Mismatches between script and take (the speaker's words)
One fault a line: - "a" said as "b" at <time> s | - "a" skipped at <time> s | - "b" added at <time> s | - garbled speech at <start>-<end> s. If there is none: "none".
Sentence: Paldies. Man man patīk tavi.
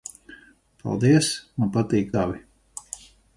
- "man" skipped at 1.7 s